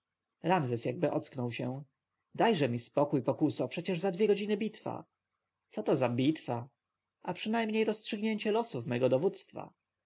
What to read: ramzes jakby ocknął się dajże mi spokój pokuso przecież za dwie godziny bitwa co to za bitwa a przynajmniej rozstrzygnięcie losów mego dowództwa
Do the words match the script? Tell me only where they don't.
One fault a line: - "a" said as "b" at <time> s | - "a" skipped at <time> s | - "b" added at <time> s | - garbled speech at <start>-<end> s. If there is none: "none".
none